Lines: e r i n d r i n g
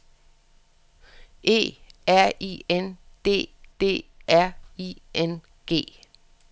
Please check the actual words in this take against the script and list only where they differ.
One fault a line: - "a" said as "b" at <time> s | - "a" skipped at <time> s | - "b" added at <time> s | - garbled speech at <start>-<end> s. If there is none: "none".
- "d" added at 3.8 s